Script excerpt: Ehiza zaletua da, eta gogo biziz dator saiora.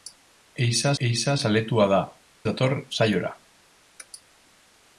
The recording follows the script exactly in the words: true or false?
false